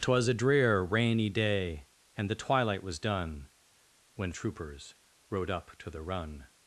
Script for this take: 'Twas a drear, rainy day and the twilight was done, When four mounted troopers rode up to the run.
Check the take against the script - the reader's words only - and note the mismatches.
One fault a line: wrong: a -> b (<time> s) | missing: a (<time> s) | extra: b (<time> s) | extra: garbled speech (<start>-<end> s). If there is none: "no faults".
missing: four mounted (4.3 s)